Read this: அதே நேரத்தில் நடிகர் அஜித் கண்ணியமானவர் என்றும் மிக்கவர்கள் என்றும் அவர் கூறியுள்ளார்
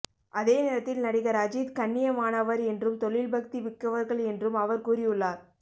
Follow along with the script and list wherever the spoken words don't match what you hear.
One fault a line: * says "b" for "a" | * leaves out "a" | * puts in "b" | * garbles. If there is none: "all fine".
* puts in "தொழில் பக்தி"